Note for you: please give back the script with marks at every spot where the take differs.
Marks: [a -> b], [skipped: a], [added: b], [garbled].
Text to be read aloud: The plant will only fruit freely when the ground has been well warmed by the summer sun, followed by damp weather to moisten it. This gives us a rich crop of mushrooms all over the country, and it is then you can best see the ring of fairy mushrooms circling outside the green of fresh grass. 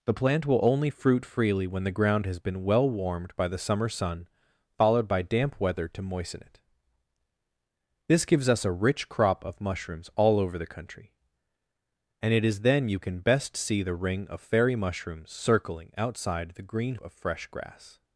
The plant will only fruit freely when the ground has been well warmed by the summer sun, followed by damp weather to moisten it. This gives us a rich crop of mushrooms all over the country, and it is then you can best see the ring of fairy mushrooms circling outside the green of fresh grass.